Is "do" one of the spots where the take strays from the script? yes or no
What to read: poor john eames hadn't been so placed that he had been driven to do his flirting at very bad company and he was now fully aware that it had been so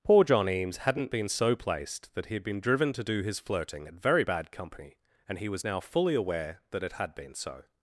no